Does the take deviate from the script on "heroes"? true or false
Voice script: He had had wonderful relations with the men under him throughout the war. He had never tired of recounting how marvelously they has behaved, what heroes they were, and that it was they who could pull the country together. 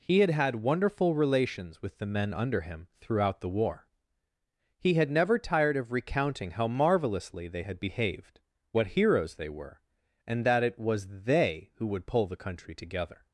false